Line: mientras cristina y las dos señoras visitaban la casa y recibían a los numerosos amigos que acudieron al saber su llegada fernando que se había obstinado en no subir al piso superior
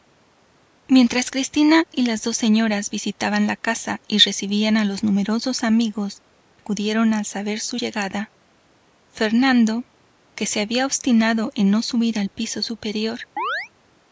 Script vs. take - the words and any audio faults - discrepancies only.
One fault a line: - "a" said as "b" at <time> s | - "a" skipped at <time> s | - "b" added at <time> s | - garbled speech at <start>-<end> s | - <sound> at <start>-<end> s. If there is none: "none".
- "que" skipped at 6.2 s
- chirp at 13.4-13.7 s